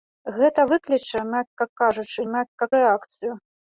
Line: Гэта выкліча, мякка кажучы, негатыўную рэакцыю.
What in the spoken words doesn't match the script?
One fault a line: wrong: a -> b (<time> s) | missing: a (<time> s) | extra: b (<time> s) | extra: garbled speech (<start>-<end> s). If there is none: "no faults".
wrong: негатыўную -> мякка (2.3 s)